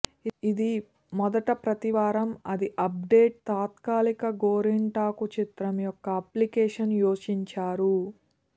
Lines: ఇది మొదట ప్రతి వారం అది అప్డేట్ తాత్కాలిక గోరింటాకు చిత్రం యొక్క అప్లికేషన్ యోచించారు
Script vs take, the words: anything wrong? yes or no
no